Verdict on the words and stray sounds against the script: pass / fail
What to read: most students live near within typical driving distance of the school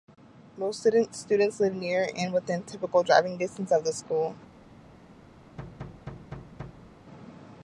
fail